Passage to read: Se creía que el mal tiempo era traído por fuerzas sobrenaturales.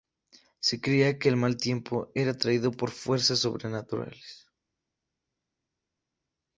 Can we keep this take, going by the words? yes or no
yes